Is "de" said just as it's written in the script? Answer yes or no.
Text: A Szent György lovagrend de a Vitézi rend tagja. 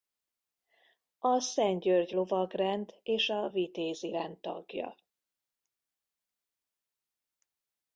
no